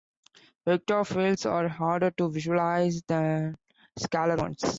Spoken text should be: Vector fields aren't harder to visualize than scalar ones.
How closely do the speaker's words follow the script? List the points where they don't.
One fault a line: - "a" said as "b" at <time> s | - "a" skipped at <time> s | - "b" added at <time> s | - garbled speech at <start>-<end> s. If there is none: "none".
- "aren't" said as "are" at 1.5 s